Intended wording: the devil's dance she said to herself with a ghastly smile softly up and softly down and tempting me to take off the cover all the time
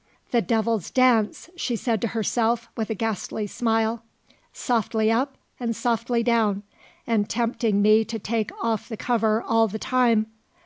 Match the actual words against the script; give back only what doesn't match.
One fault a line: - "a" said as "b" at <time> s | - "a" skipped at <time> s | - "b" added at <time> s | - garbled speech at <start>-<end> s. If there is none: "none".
none